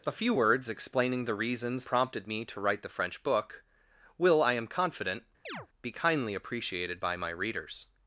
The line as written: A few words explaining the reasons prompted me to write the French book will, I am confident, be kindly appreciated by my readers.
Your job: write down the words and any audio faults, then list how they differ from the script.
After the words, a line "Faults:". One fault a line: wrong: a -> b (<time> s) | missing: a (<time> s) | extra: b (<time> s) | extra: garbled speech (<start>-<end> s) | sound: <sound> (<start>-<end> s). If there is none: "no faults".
A few words explaining the reasons prompted me to write the French book will, I am confident, be kindly appreciated by my readers.
Faults:
sound: chirp (5.5-5.7 s)